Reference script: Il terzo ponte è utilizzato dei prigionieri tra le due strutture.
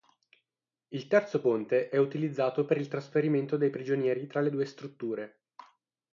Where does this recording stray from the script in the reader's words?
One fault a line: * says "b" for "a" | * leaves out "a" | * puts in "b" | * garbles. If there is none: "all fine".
* puts in "per il trasferimento"